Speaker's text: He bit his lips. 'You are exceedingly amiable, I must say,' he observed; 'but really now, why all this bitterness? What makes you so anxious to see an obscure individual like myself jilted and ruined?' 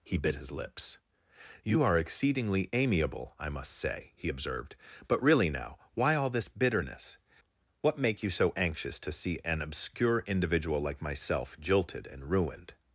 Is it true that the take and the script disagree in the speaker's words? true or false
true